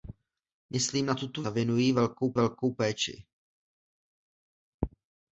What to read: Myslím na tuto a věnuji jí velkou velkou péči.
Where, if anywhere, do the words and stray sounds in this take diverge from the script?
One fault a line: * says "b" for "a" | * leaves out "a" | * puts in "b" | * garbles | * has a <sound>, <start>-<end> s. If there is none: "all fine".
all fine